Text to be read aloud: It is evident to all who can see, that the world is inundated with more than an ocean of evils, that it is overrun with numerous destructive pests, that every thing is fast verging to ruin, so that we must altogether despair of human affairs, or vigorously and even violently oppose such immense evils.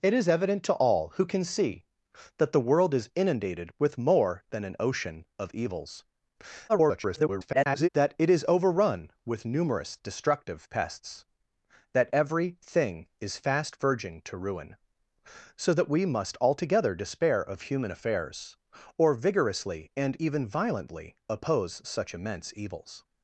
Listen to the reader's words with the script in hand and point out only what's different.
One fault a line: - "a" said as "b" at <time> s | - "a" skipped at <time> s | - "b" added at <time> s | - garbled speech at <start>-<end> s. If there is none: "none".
- garbled speech at 6.7-7.9 s